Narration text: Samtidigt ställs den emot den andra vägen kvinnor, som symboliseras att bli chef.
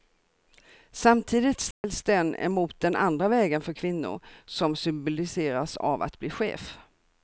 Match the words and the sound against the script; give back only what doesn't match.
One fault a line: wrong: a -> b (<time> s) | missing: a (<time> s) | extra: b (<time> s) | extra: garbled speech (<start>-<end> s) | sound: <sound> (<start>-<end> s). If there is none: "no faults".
sound: dropout (1.7-1.8 s)
extra: för (3.6 s)
extra: av (5.8 s)